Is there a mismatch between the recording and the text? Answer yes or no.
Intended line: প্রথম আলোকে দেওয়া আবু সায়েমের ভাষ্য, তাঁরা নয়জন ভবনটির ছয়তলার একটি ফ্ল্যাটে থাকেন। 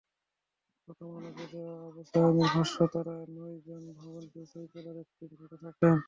no